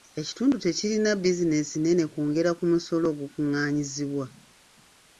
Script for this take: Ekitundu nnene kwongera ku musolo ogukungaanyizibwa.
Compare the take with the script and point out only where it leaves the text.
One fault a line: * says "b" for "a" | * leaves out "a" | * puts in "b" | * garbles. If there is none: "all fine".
* puts in "tekirina bizinensi"